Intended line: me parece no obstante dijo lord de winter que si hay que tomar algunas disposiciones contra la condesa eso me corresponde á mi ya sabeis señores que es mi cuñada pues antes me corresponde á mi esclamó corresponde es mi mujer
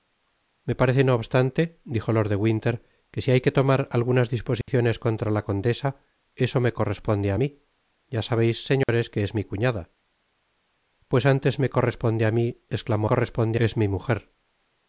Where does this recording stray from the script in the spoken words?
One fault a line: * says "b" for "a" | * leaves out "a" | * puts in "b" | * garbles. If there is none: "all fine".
all fine